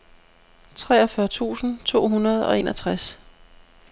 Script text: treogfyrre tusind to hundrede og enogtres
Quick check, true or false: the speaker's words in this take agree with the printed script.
true